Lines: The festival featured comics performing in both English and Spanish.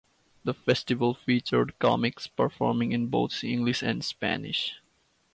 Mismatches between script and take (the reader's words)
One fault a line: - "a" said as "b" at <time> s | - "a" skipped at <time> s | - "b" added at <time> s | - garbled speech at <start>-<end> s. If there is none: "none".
none